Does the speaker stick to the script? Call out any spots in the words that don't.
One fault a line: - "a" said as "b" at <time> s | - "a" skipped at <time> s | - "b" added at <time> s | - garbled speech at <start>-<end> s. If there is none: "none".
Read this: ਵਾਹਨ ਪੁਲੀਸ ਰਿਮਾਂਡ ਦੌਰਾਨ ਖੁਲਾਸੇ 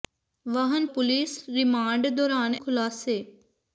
none